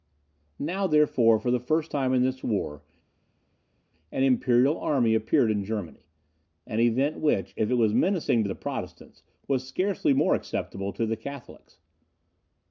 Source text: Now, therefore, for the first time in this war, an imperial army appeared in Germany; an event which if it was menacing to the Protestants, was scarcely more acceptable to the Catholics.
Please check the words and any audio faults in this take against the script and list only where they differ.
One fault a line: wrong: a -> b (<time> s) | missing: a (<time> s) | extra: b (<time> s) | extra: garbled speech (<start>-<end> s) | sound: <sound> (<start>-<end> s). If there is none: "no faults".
no faults